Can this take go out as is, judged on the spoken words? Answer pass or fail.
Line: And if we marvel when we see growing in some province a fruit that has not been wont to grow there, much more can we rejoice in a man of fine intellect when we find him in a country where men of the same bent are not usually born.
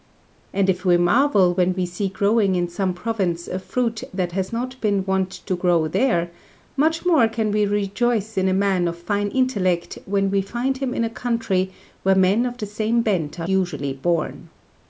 fail